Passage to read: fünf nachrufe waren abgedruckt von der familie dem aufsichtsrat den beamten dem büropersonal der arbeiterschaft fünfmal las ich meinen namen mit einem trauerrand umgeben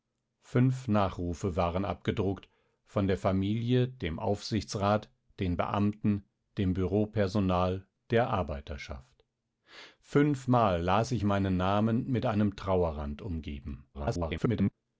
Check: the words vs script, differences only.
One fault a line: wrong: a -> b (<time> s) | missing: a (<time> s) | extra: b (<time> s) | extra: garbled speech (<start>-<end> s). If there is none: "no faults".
extra: garbled speech (13.9-14.7 s)